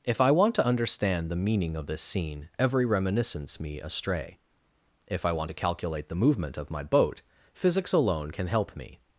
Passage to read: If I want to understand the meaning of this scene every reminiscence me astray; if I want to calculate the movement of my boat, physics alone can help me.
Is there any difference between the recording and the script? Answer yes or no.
no